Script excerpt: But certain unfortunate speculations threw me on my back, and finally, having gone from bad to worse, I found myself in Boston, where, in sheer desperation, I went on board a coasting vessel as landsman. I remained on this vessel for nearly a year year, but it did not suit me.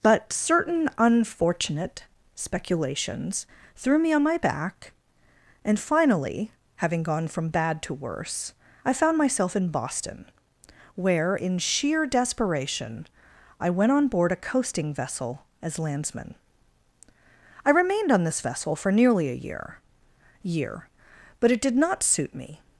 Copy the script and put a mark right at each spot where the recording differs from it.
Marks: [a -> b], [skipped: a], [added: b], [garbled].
But certain unfortunate speculations threw me on my back, and finally, having gone from bad to worse, I found myself in Boston, where, in sheer desperation, I went on board a coasting vessel as landsman. I remained on this vessel for nearly a year year, but it did not suit me.